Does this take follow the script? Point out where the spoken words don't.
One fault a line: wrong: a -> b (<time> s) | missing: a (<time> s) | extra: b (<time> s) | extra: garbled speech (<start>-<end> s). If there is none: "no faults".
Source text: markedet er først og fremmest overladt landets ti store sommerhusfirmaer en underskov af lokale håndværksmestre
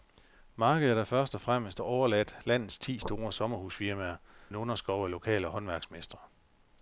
no faults